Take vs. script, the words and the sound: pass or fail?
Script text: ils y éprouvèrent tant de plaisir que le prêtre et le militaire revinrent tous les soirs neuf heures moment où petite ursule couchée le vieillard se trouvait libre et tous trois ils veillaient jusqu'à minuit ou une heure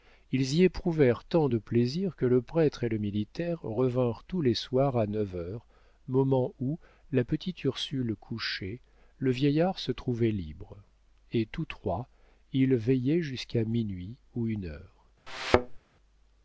fail